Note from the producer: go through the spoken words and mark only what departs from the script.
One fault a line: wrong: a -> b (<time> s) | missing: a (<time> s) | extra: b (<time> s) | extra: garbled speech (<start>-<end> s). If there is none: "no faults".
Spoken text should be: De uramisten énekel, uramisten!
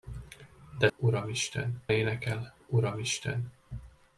no faults